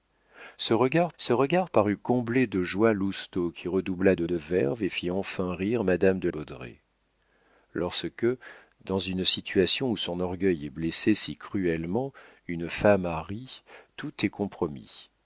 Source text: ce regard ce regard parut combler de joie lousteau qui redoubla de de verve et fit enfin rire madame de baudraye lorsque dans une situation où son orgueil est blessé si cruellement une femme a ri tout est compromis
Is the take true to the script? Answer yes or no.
yes